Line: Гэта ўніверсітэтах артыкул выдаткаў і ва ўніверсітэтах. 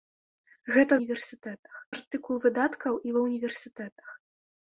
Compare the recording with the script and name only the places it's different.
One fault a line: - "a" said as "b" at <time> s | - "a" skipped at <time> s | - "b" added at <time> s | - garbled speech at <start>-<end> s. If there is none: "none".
none